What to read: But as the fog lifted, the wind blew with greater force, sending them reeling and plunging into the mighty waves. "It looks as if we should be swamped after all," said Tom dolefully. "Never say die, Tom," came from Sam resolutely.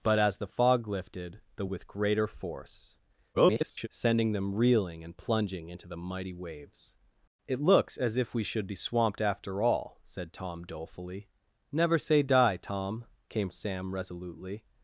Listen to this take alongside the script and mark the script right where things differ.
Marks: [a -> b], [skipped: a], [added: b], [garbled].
But as the fog lifted, the [skipped: wind blew] with greater force, [garbled] sending them reeling and plunging into the mighty waves. "It looks as if we should be swamped after all," said Tom dolefully. "Never say die, Tom," came [skipped: from] Sam resolutely.